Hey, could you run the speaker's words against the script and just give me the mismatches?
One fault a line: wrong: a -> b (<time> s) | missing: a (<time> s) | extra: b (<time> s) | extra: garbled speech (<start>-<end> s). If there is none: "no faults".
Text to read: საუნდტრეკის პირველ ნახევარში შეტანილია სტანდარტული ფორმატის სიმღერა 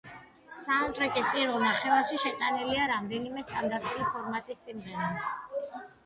extra: რამდენიმე (2.9 s)